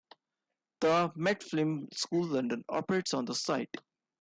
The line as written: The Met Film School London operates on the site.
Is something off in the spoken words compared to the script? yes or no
no